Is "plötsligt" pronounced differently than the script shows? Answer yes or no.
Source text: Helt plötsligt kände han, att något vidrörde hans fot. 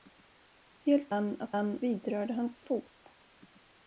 yes